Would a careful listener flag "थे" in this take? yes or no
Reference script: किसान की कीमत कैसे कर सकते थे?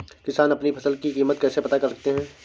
yes